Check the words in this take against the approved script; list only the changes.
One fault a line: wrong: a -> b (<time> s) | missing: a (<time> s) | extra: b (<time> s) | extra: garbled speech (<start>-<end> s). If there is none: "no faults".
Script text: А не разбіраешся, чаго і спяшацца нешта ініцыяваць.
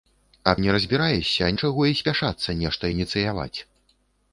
no faults